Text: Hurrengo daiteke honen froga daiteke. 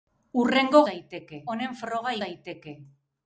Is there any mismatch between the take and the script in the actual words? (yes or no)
no